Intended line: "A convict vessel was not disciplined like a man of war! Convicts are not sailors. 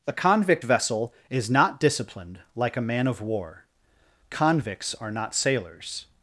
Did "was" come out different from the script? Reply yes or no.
yes